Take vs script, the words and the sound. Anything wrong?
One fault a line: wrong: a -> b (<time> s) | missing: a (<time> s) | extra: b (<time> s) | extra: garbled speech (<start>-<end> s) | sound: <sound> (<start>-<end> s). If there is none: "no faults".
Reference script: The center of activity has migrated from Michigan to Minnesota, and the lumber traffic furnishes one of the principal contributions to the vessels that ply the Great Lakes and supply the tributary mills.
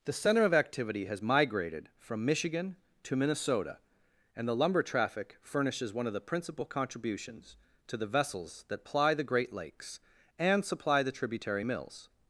no faults